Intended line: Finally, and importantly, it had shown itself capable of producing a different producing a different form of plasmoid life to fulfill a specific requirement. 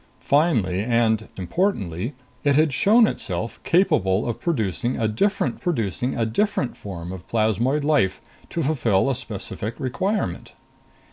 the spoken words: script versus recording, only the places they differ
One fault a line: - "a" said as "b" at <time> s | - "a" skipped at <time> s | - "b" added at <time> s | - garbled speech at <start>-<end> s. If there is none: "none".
none